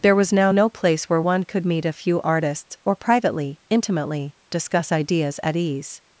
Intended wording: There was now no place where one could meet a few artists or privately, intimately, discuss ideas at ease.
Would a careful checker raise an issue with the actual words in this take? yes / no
no